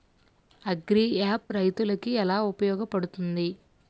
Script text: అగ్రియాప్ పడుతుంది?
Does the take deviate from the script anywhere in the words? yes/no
yes